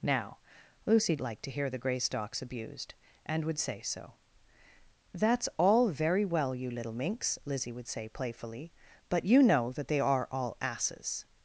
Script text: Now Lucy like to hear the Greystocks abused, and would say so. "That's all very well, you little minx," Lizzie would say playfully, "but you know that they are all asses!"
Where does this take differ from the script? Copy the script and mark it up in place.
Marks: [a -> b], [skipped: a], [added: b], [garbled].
Now Lucy like to hear the Greystocks abused, and would say so. "That's all very well, you little minx," Lizzie would say playfully, "but you know that they are all asses!"